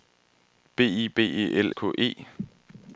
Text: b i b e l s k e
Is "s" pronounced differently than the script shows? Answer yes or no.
yes